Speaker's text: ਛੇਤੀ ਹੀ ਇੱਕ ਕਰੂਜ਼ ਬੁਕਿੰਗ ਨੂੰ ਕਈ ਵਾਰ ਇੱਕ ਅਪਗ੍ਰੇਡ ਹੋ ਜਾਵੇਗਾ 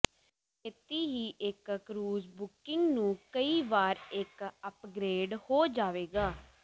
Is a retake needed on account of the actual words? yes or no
no